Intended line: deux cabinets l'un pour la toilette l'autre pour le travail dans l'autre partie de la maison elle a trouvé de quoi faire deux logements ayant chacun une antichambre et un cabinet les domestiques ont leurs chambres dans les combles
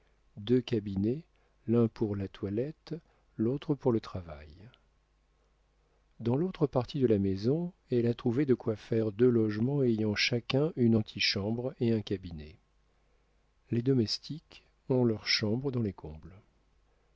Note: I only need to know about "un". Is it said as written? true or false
true